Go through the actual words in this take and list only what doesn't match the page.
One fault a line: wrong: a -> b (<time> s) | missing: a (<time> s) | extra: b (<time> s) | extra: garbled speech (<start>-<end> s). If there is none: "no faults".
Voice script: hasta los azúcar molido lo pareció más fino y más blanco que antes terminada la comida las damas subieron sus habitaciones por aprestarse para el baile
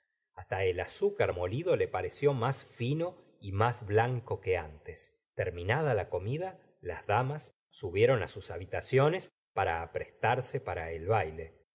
wrong: los -> el (0.7 s)
wrong: lo -> le (1.8 s)
wrong: por -> para (9.5 s)